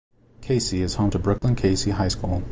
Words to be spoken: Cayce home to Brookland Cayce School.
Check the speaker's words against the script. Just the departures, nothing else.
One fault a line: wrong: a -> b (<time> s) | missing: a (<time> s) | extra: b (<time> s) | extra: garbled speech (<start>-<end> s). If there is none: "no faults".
extra: is (0.7 s)
extra: High (1.9 s)